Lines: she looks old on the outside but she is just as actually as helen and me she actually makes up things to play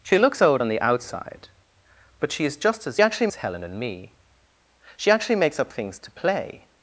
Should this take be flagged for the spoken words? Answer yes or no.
no